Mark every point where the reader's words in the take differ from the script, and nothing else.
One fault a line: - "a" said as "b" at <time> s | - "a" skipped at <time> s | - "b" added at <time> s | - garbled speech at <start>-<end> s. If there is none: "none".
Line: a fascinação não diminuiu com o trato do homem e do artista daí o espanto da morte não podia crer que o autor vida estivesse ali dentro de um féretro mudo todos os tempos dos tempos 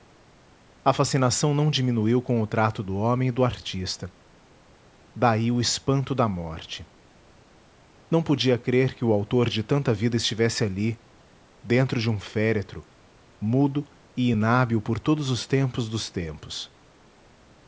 - "de tanta" added at 9.5 s
- "e inábil por" added at 14.2 s